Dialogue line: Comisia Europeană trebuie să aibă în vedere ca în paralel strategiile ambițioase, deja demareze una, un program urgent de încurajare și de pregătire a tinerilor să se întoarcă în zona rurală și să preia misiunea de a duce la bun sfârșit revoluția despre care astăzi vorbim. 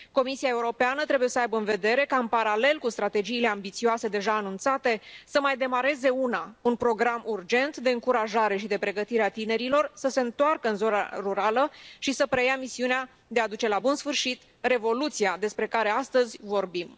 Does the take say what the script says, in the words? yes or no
no